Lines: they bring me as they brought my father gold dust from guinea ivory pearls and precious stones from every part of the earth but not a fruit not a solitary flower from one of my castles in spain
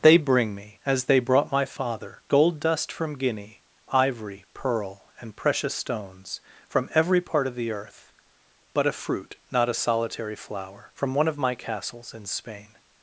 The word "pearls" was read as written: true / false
false